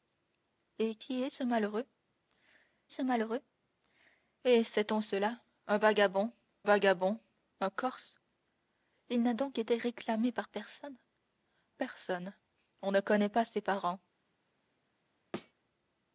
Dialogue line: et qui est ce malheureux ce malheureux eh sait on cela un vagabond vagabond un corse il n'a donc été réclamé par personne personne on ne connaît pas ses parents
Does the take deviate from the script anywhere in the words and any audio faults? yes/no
yes